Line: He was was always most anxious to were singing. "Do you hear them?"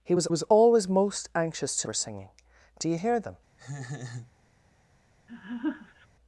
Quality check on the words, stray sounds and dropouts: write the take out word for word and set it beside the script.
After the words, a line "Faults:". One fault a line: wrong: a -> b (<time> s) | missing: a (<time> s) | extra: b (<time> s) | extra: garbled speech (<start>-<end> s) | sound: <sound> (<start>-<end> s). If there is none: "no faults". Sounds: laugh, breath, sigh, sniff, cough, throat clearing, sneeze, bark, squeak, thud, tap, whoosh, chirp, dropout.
He was was always most anxious to were singing. "Do you hear them?"
Faults:
sound: laugh (3.6-4.3 s)
sound: laugh (5.3-6.1 s)